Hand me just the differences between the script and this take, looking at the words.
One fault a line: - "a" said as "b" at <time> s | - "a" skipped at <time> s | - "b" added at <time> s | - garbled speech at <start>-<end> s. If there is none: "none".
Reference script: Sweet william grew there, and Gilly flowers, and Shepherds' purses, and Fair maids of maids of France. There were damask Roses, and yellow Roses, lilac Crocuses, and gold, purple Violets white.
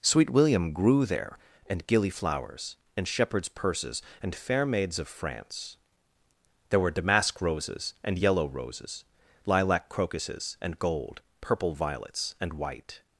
- "maids of" skipped at 5.1 s
- "and" added at 12.4 s